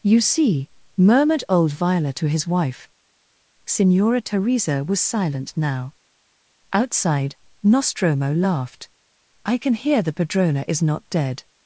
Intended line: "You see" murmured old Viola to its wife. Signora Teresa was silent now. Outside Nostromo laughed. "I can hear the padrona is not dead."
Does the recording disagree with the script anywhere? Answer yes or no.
yes